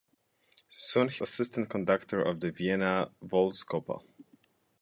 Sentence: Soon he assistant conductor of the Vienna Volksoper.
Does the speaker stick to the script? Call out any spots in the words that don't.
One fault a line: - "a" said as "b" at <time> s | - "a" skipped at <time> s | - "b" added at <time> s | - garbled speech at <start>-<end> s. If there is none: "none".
none